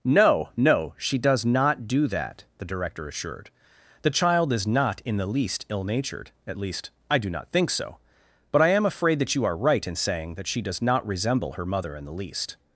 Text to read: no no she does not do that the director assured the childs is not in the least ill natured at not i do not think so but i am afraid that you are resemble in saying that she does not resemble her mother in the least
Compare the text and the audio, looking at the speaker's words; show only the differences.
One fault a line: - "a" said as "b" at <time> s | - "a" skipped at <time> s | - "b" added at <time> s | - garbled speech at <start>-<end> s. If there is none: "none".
- "childs" said as "child" at 4.1 s
- "not" said as "least" at 6.6 s
- "resemble" said as "right" at 9.6 s